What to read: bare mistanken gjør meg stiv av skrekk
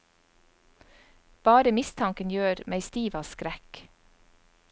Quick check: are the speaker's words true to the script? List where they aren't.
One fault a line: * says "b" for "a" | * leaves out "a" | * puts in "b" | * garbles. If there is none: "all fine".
all fine